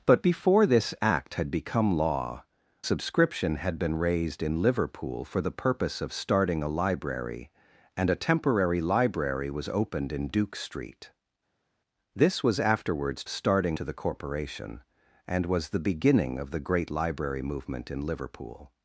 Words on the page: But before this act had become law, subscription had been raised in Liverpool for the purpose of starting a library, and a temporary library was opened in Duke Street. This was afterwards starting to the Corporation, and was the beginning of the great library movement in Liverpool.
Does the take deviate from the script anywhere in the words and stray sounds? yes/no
no